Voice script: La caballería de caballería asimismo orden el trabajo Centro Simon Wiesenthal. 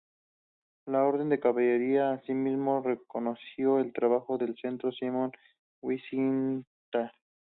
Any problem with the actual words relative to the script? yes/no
yes